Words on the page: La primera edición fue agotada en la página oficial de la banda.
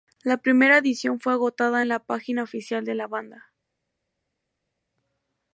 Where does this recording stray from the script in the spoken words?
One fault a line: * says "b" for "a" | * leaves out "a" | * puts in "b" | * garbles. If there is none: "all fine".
all fine